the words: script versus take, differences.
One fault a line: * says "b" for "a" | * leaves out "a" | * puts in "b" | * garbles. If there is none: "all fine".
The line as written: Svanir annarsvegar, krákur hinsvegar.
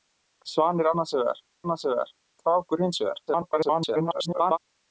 * puts in "annarsvegar"
* garbles